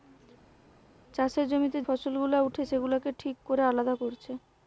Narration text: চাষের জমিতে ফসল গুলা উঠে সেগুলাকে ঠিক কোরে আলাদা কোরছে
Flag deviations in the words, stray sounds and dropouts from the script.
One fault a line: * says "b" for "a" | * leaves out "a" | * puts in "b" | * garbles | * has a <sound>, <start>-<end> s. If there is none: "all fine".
all fine